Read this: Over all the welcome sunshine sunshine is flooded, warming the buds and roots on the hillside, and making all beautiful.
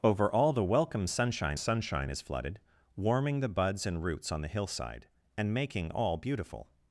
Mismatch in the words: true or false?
false